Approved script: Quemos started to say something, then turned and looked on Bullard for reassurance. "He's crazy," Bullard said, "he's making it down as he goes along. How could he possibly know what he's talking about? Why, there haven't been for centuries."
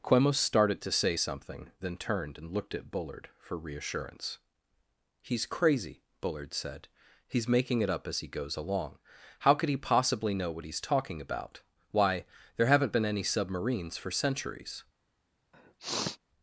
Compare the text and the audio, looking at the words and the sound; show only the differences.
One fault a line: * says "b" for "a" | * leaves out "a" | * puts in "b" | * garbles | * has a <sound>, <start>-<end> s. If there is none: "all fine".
* says "at" for "on"
* says "up" for "down"
* puts in "any submarines"
* has a sniff, 15.5-16.2 s